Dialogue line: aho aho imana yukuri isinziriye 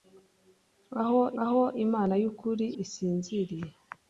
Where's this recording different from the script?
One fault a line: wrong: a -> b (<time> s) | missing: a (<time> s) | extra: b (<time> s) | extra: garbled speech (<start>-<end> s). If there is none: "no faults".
no faults